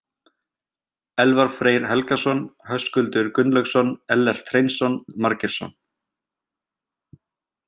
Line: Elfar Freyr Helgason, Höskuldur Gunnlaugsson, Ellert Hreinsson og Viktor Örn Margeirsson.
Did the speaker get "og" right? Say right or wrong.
wrong